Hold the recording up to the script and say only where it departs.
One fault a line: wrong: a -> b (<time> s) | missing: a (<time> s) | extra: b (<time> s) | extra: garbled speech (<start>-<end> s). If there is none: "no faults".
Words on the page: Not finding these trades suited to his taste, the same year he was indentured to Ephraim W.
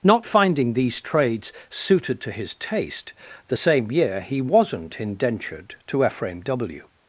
wrong: was -> wasn't (4.4 s)